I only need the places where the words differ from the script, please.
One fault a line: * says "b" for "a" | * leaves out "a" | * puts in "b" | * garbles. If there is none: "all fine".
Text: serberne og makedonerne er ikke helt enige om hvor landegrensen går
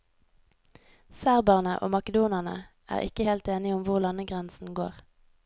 all fine